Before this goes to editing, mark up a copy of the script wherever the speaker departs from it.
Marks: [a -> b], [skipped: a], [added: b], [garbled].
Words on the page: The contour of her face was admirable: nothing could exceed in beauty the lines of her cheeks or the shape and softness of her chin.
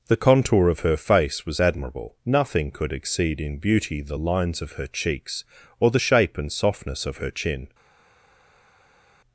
The contour of her face was admirable: nothing could exceed in beauty the lines of her cheeks or the shape and softness of her chin.